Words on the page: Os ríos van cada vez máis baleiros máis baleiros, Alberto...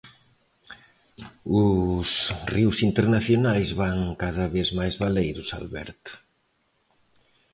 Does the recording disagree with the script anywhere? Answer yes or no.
yes